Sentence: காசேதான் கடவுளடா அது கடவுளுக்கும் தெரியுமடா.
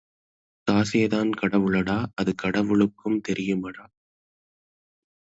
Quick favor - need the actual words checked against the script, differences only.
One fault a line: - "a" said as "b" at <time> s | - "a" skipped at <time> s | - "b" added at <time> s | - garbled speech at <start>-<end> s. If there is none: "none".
none